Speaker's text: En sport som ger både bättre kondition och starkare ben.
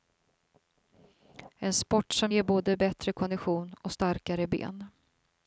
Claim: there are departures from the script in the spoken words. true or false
false